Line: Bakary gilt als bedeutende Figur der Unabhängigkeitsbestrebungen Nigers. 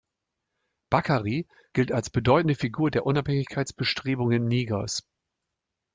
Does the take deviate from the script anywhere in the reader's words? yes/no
no